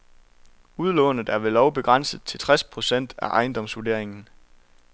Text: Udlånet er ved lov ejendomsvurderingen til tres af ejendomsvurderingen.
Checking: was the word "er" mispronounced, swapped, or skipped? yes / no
no